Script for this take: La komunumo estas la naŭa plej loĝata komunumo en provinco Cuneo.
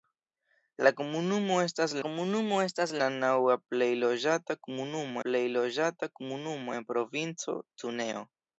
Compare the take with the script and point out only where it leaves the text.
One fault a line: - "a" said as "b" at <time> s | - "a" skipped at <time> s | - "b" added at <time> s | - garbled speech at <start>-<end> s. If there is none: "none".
- "komunumo estas" added at 2.0 s
- "plej loĝata komunumo" added at 5.3 s